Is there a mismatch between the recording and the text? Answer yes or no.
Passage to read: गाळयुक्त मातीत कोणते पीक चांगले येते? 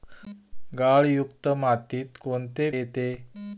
yes